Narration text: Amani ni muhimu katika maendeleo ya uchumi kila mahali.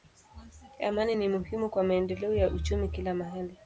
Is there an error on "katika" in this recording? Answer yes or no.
yes